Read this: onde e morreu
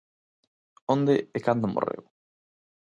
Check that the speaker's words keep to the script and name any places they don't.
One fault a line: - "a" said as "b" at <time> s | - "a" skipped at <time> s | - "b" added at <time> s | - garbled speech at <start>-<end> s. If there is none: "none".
- "cando" added at 1.5 s